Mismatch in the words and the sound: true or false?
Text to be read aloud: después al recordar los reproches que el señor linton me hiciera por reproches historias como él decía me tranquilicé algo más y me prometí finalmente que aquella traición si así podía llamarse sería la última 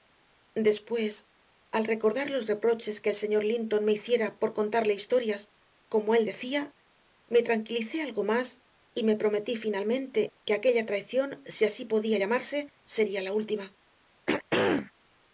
true